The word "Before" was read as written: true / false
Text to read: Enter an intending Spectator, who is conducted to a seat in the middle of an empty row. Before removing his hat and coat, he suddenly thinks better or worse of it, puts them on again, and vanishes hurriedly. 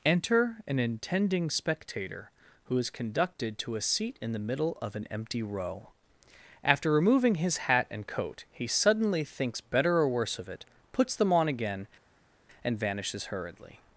false